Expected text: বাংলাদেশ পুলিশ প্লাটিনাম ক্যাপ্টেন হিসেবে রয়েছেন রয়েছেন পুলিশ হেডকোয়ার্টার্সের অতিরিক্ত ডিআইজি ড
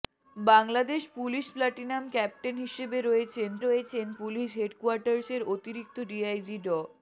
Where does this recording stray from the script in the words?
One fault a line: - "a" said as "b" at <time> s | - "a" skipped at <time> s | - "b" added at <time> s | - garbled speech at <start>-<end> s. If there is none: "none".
none